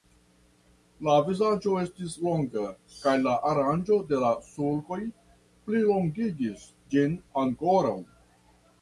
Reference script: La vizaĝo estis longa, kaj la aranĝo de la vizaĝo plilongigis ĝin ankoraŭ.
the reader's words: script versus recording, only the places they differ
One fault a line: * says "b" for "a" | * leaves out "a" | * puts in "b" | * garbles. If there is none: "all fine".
* says "sulkoj" for "vizaĝo"